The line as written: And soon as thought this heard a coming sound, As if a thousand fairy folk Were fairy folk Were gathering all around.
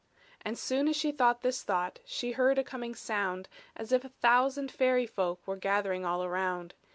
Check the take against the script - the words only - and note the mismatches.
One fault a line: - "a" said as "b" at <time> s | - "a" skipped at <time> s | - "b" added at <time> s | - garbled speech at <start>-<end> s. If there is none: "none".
- "she" added at 0.9 s
- "thought She" added at 1.6 s
- "fairy folk Were" skipped at 5.6 s